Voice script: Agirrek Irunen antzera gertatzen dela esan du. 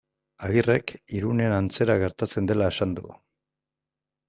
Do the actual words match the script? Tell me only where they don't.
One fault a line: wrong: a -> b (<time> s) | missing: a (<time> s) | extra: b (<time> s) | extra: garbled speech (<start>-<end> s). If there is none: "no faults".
no faults